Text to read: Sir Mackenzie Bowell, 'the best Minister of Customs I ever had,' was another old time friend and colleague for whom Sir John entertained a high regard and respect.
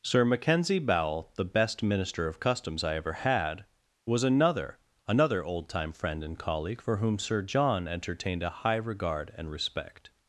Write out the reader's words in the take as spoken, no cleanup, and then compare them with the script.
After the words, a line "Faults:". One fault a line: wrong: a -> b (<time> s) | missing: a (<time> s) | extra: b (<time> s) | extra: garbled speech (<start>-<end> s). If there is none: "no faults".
Sir Mackenzie Bowell, 'the best Minister of Customs I ever had,' was another another old time friend and colleague for whom Sir John entertained a high regard and respect.
Faults:
extra: another (5.1 s)